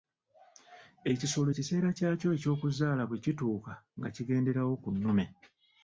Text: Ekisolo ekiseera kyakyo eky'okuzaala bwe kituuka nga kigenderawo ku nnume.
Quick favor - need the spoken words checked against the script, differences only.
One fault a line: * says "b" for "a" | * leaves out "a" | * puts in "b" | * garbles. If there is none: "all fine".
all fine